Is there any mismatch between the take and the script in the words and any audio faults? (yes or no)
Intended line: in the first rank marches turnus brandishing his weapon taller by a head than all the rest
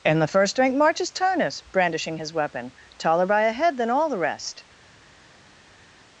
no